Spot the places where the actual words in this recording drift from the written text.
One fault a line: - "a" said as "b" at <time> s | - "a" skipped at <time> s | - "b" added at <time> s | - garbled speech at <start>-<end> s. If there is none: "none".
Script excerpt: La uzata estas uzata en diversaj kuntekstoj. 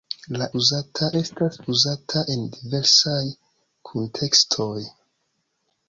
none